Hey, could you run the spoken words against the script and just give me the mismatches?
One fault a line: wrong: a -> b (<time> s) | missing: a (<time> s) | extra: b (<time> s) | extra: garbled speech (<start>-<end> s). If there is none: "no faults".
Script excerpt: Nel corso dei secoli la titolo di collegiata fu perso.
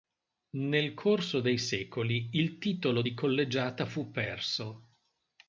wrong: la -> il (2.3 s)